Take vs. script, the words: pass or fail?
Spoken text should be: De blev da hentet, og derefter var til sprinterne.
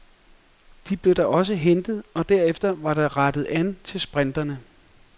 fail